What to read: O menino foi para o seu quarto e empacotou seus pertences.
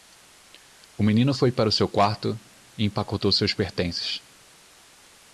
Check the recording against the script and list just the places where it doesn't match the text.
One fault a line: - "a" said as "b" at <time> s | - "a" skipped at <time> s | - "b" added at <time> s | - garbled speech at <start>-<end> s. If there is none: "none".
none